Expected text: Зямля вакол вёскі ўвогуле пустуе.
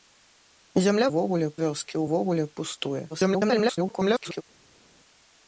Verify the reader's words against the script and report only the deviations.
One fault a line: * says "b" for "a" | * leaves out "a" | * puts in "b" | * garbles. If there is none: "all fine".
* says "ўвогуле" for "вакол"
* garbles